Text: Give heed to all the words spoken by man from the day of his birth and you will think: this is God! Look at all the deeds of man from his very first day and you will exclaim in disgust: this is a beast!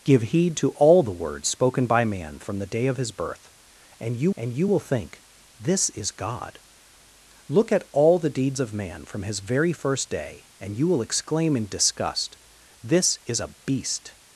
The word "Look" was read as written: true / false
true